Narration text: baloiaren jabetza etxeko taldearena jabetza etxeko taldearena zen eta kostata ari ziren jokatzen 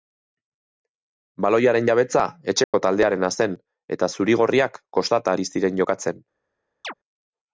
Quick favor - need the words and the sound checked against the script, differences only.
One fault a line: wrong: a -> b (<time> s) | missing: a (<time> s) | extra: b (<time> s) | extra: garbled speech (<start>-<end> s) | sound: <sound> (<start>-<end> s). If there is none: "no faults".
sound: dropout (2.6-2.7 s)
wrong: jabetza etxeko taldearena zen eta -> zen eta zuri gorriak (3.4 s)
sound: chirp (6.8-6.9 s)